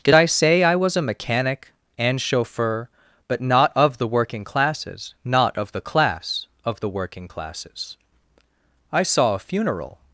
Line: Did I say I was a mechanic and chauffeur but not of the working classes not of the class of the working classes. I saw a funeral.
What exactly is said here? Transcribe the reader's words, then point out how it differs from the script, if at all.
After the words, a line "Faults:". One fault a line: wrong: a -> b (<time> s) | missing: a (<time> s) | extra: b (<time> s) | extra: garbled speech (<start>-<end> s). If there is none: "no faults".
Did I say I was a mechanic and chauffeur but not of the working classes not of the class of the working classes. I saw a funeral.
Faults:
no faults